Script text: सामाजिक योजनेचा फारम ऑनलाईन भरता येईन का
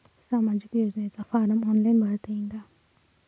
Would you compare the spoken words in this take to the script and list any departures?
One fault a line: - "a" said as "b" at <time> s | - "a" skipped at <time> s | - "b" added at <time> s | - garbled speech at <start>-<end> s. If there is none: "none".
none